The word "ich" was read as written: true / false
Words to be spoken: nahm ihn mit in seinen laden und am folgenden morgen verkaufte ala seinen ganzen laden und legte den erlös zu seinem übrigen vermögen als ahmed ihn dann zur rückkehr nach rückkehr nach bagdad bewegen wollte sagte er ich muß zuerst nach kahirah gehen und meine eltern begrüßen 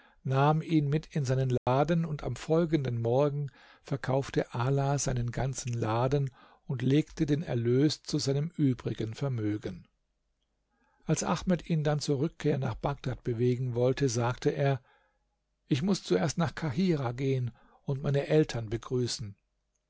true